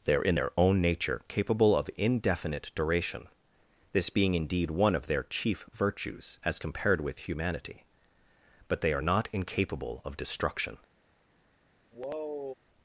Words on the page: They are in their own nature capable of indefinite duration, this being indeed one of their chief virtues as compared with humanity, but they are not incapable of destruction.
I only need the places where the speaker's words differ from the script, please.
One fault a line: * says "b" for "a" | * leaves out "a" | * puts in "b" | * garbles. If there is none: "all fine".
all fine